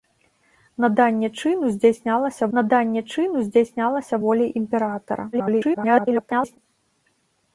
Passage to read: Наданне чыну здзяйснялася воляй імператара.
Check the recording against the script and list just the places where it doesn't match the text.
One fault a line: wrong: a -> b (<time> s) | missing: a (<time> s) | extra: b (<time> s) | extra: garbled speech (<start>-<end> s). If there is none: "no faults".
extra: наданне чыну здзяйснялася (2.6 s)
extra: garbled speech (5.3-6.6 s)